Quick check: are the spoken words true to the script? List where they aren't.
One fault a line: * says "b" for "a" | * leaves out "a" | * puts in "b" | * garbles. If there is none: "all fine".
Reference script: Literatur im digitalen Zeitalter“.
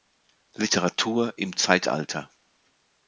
* leaves out "digitalen"